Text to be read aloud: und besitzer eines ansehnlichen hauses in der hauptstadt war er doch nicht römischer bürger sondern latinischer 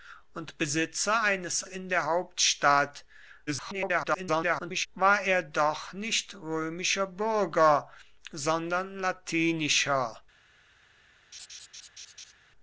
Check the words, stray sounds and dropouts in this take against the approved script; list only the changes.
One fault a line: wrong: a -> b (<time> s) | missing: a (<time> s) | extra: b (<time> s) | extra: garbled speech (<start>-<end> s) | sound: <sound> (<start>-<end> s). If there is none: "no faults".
missing: ansehnlichen hauses (1.6 s)
extra: garbled speech (3.5-4.9 s)
sound: laugh (11.3-12.3 s)